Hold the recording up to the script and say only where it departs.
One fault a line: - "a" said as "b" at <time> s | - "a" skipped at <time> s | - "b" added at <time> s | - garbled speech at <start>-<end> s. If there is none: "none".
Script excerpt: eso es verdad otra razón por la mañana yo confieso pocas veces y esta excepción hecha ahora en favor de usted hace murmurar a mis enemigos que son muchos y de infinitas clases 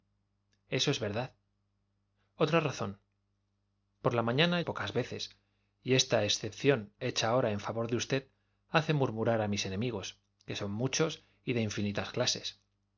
- "yo confieso" skipped at 4.6 s